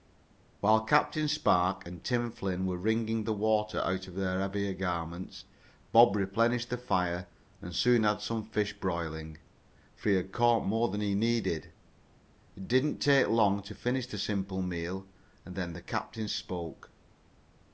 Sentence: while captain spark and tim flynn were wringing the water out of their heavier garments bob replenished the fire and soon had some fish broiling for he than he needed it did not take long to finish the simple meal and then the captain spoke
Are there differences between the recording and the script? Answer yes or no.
yes